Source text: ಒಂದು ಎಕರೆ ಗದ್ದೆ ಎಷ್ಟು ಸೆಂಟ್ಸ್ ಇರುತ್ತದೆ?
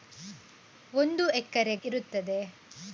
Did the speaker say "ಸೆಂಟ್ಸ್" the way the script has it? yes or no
no